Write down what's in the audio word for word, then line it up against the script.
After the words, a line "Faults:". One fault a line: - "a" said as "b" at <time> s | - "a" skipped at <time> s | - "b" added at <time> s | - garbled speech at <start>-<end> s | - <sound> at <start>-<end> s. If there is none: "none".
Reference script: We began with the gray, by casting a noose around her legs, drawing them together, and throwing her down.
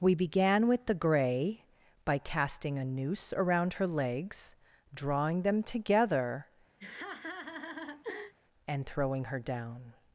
We began with the gray, by casting a noose around her legs, drawing them together, and throwing her down.
Faults:
- laugh at 6.8-8.3 s